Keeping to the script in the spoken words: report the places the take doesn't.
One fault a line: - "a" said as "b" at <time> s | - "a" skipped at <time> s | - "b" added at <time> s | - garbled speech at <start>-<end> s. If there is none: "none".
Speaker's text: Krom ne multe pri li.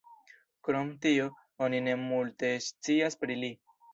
- "tio oni" added at 1.0 s
- "scias" added at 2.7 s